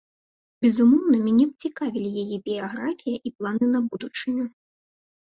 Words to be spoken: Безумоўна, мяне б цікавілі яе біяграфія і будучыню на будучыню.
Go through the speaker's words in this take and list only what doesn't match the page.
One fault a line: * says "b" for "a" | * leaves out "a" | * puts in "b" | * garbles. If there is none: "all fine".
* says "планы" for "будучыню"